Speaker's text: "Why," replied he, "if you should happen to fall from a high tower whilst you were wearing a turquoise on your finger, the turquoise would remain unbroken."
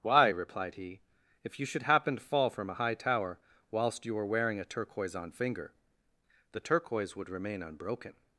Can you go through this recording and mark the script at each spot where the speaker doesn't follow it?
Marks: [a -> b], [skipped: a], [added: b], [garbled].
"Why," replied he, "if you should happen to fall from a high tower whilst you were wearing a turquoise on [skipped: your] finger, the turquoise would remain unbroken."